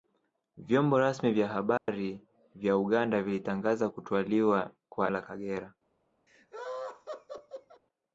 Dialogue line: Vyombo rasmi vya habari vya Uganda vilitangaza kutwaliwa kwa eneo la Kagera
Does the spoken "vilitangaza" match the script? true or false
true